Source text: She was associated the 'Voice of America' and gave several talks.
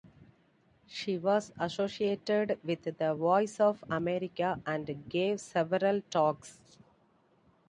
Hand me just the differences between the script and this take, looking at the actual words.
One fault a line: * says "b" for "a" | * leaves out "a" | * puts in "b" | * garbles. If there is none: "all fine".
* puts in "with"